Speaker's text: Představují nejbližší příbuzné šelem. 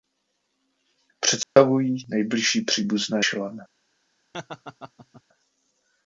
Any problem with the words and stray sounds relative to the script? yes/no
yes